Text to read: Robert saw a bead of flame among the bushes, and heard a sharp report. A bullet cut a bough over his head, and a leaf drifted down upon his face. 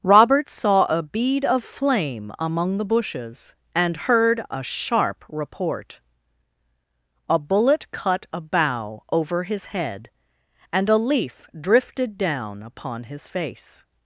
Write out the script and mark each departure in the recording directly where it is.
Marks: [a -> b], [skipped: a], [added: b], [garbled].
Robert saw a bead of flame among the bushes, and heard a sharp report. A bullet cut a bough over his head, and a leaf drifted down upon his face.